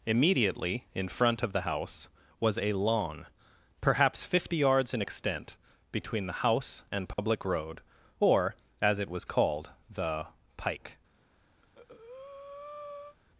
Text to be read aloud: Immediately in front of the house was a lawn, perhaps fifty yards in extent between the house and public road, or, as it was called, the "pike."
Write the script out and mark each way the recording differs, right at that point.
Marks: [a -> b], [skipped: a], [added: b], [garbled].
Immediately in front of the house was a lawn, perhaps fifty yards in extent between the house and public road, or, as it was called, the "pike."